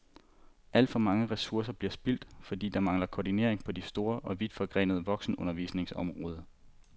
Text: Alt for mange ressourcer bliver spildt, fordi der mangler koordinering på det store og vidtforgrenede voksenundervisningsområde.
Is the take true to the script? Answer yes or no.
yes